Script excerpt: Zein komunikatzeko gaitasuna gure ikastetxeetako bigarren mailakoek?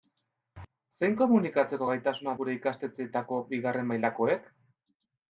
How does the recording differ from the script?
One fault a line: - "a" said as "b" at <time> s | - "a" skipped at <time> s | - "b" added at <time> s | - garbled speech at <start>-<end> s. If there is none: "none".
none